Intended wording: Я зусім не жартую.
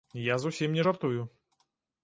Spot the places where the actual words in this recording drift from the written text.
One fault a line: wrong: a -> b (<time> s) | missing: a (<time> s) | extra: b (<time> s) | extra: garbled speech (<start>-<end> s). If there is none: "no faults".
no faults